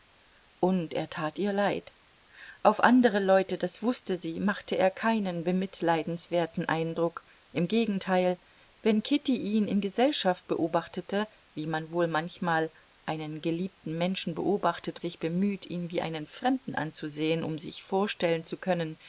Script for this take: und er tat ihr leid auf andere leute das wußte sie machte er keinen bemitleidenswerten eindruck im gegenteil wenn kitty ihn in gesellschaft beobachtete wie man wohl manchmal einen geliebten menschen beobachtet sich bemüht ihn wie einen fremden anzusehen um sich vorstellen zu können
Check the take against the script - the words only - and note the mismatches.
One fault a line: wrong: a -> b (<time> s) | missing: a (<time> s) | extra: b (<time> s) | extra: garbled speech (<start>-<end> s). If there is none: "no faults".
no faults